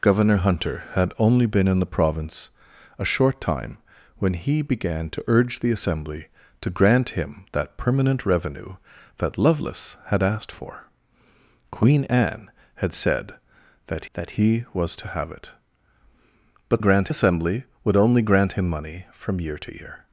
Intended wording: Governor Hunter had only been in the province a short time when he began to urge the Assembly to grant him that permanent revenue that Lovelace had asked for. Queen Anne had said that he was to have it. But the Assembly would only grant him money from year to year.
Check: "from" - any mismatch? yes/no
no